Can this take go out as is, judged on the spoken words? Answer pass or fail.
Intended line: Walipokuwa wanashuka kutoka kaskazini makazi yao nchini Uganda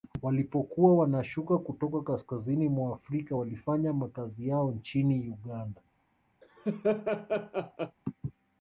fail